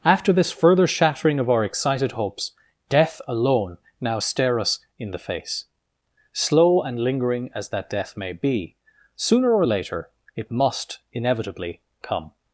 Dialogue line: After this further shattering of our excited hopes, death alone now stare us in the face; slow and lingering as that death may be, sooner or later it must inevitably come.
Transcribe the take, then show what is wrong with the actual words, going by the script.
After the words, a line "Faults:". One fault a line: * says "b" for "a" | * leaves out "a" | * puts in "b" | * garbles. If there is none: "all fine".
After this further shattering of our excited hopes, death alone now stare us in the face; slow and lingering as that death may be, sooner or later it must inevitably come.
Faults:
all fine